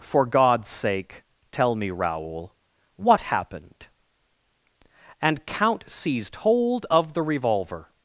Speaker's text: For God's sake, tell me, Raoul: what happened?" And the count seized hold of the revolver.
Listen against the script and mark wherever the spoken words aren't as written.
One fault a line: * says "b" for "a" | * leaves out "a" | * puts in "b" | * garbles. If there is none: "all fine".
* leaves out "the"